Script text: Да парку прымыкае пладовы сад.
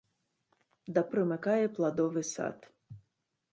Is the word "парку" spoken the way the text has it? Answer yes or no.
no